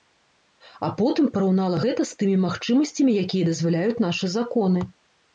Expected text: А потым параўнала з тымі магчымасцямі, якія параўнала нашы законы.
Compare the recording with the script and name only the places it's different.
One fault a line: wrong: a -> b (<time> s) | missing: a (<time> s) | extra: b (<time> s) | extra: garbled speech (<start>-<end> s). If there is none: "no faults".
extra: гэта (1.8 s)
wrong: параўнала -> дазваляюць (3.5 s)